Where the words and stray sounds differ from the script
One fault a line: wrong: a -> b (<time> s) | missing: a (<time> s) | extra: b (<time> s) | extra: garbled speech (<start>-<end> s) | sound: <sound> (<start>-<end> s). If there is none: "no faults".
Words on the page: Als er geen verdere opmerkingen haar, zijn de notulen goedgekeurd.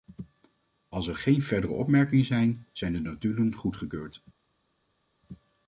wrong: haar -> zijn (2.2 s)